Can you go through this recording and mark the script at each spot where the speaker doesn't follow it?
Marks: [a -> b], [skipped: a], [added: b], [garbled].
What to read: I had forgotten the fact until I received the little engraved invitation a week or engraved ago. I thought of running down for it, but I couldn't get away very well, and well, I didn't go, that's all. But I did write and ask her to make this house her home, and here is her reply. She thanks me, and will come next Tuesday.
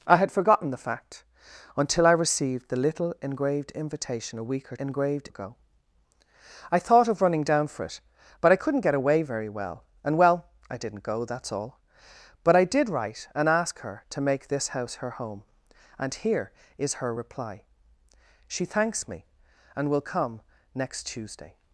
I had forgotten the fact until I received the little engraved invitation a week or engraved ago. I thought of running down for it, but I couldn't get away very well, and well, I didn't go, that's all. But I did write and ask her to make this house her home, and here is her reply. She thanks me, and will come next Tuesday.